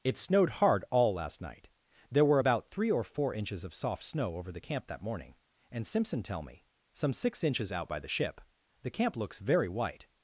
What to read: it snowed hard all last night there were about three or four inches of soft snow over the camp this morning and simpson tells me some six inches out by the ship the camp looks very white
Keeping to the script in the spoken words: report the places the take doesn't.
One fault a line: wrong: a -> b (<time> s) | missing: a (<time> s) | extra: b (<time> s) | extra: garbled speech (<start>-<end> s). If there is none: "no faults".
wrong: this -> that (4.9 s)
wrong: tells -> tell (6.2 s)